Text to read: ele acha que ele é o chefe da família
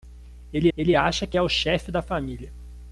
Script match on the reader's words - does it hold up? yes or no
no